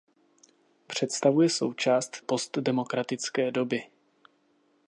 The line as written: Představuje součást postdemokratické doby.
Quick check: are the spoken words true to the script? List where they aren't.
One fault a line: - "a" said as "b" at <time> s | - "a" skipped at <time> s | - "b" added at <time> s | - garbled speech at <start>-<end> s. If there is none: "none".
none